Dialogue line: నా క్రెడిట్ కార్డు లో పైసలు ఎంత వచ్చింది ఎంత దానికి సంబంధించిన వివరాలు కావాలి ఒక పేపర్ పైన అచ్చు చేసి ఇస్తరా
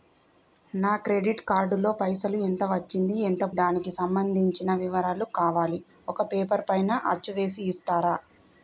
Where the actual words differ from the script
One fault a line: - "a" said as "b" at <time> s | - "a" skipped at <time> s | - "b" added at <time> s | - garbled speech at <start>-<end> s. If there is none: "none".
none